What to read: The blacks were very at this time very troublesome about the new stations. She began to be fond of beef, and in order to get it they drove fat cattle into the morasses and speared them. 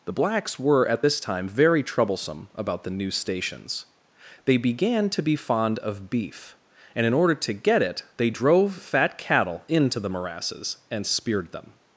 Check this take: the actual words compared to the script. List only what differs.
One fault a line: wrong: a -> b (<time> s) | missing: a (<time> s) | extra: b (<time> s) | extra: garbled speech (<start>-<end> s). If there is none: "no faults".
missing: very (0.9 s)
wrong: She -> They (4.4 s)